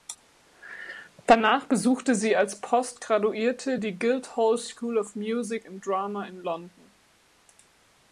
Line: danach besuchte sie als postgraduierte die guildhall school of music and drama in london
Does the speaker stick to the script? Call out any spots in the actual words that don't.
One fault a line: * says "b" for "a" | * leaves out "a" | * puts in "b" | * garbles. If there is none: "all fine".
all fine